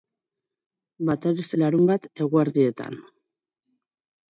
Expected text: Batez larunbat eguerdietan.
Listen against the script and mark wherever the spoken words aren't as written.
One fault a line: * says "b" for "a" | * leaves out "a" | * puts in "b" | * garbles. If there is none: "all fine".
all fine